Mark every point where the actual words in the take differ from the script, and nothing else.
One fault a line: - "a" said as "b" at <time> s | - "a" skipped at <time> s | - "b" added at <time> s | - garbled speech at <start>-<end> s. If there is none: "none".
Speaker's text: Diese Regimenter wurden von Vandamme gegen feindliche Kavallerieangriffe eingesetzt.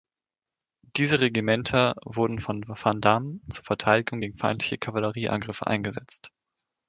- "zur Verteidigung" added at 3.5 s